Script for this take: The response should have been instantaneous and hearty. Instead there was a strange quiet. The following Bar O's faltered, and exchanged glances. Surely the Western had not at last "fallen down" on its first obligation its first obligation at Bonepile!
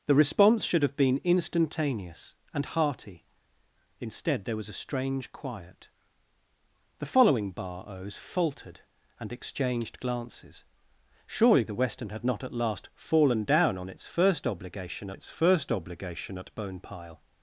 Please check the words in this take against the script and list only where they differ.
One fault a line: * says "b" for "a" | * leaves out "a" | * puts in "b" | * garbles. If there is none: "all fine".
all fine